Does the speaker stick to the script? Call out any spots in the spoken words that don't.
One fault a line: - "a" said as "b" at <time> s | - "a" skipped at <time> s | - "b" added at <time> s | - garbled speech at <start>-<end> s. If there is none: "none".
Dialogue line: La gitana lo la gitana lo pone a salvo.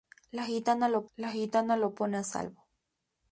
none